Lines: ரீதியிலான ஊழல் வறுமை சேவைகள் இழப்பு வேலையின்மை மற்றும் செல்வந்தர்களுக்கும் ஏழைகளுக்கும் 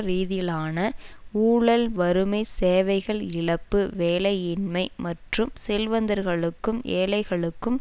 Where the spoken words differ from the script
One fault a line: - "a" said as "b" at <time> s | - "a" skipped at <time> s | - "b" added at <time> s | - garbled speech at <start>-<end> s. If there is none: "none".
none